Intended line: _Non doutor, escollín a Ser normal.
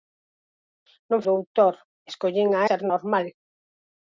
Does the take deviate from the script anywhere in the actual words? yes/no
no